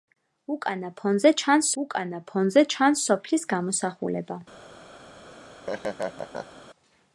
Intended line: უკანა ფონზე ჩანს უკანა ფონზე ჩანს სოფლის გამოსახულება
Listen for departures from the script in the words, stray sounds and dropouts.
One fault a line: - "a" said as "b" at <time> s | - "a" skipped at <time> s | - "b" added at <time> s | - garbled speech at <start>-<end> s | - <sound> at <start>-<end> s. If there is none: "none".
- laugh at 5.3-6.6 s